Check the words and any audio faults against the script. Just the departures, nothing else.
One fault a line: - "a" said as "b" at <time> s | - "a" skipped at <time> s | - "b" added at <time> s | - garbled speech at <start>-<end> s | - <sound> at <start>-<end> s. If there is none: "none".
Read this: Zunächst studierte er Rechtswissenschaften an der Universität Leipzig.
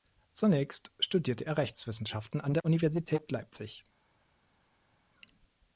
none